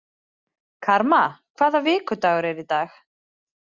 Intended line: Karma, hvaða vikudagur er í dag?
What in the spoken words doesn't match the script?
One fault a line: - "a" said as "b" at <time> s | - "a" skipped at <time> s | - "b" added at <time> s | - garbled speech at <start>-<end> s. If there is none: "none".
none